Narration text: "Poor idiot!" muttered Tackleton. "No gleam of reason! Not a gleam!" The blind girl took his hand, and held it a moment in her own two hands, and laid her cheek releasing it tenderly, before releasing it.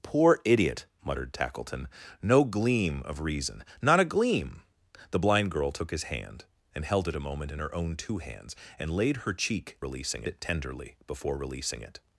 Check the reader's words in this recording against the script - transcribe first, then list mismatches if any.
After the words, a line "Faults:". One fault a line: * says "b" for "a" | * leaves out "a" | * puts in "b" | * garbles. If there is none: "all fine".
"Poor idiot!" muttered Tackleton. "No gleam of reason! Not a gleam!" The blind girl took his hand, and held it a moment in her own two hands, and laid her cheek releasing it tenderly, before releasing it.
Faults:
all fine